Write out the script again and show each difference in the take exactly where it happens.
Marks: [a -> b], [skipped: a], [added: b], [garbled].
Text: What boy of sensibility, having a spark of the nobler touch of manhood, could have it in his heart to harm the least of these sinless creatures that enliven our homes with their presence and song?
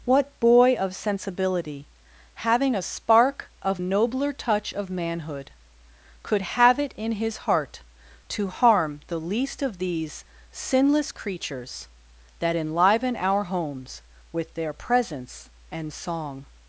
What boy of sensibility, having a spark of [skipped: the] nobler touch of manhood, could have it in his heart to harm the least of these sinless creatures that enliven our homes with their presence and song?